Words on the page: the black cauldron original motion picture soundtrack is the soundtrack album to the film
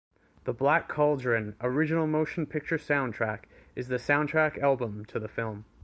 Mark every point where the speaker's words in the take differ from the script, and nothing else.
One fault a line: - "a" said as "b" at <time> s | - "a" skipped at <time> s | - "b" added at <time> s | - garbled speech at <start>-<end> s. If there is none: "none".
none